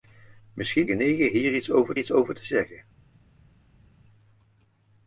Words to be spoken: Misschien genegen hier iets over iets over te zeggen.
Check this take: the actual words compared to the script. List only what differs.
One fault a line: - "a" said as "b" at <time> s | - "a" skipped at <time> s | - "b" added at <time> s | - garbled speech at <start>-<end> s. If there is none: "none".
none